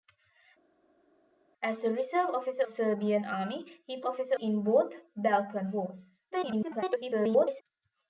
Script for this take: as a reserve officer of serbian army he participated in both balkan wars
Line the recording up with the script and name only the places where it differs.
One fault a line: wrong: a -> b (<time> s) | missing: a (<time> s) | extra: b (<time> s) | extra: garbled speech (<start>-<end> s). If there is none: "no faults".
missing: of (2.7 s)
wrong: participated -> officer (4.0 s)
extra: garbled speech (6.3-7.6 s)